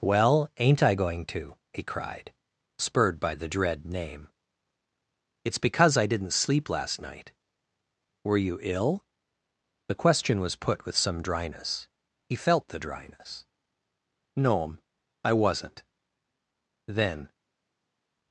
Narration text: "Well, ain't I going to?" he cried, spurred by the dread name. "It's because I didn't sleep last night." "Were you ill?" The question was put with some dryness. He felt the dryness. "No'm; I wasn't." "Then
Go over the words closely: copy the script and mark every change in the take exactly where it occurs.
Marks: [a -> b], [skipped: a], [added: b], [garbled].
"Well, ain't I going to?" he cried, spurred by the dread name. "It's because I didn't sleep last night." "Were you ill?" The question was put with some dryness. He felt the dryness. "No'm; I wasn't." "Then